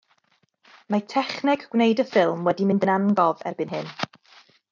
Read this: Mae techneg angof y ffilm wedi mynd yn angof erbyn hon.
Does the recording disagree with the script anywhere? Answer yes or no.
yes